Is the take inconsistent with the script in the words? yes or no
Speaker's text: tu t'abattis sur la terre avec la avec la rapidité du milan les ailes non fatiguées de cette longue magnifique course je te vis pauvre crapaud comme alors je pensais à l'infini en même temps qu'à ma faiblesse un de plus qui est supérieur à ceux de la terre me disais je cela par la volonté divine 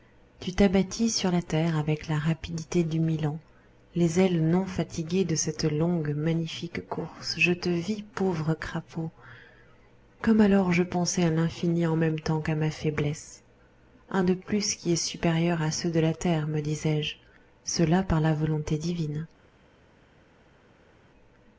yes